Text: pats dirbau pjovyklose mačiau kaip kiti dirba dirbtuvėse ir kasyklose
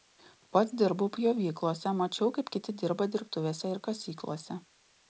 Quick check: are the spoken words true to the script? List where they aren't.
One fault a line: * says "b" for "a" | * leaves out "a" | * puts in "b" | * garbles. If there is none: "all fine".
all fine